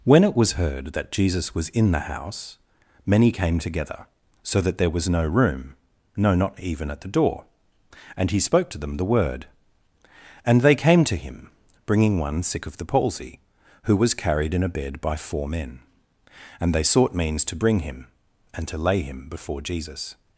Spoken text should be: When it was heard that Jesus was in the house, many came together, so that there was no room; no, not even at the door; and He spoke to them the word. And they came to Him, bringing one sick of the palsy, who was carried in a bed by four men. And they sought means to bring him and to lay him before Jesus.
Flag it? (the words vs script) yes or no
no